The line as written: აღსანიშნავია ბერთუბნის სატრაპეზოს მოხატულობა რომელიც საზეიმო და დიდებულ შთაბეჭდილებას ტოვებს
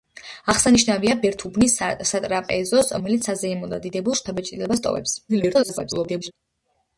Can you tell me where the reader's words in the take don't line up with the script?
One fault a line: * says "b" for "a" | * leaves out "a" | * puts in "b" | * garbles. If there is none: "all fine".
* leaves out "მოხატულობა"
* garbles